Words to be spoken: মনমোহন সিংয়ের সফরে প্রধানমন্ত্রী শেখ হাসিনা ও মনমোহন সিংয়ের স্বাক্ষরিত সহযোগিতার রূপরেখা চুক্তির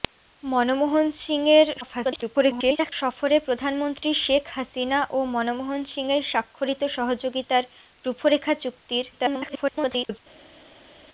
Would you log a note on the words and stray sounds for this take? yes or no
yes